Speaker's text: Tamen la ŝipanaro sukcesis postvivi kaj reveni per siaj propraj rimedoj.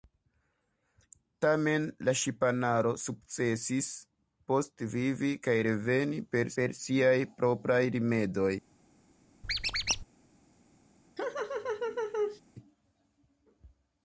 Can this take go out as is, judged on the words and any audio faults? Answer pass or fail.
fail